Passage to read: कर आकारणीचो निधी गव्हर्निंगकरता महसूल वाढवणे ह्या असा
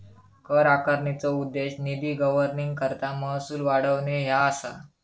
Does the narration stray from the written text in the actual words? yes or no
yes